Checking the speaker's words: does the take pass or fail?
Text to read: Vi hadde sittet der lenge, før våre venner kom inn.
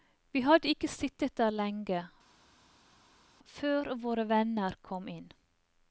fail